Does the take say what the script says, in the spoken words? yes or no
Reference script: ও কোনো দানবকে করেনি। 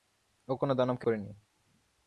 yes